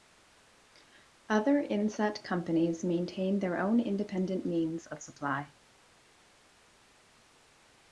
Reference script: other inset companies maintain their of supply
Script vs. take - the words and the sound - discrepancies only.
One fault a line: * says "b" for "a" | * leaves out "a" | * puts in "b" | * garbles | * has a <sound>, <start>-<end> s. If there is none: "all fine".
* puts in "own independent means"